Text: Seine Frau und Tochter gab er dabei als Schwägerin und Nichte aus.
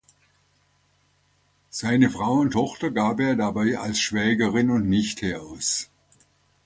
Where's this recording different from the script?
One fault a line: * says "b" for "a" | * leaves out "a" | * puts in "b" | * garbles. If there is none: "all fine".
all fine